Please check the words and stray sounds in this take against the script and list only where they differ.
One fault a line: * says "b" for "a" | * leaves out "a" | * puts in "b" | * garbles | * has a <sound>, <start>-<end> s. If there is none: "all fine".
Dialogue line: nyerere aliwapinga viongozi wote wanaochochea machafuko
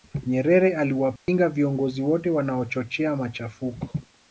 * has a dropout, 1.2-1.3 s